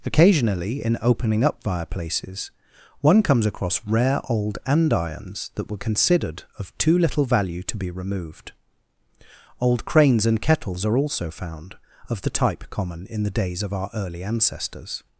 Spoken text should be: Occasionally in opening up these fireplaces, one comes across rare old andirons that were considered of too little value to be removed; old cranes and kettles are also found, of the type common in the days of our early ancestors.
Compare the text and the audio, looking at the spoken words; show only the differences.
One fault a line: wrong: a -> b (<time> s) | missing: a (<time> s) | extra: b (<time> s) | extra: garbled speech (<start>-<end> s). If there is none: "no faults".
missing: these (1.6 s)